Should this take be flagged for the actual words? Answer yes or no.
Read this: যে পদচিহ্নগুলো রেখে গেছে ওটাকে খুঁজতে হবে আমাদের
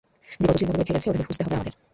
no